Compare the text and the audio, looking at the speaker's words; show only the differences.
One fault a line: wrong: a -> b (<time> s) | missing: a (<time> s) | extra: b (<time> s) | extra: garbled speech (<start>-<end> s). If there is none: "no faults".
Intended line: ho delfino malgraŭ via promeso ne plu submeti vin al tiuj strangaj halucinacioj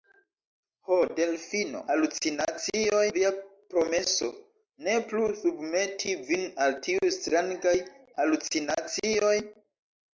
wrong: malgraŭ -> halucinacioj (1.9 s)